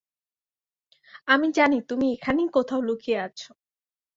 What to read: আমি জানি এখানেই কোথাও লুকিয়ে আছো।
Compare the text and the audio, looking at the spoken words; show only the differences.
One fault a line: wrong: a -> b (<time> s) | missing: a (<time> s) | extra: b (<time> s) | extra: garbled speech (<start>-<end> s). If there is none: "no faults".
extra: তুমি (1.9 s)